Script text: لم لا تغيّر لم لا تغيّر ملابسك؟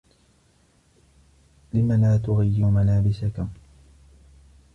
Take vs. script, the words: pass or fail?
fail